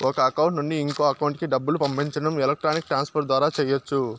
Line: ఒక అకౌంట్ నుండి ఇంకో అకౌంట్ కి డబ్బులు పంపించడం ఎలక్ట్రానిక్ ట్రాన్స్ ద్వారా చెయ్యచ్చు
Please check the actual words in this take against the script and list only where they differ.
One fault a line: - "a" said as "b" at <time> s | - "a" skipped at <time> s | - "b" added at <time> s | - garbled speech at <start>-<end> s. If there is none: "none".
- "ఫర్" added at 3.1 s